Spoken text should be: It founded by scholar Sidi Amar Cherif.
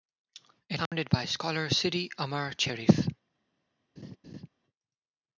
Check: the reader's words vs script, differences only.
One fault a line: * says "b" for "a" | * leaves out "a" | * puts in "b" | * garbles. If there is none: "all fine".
all fine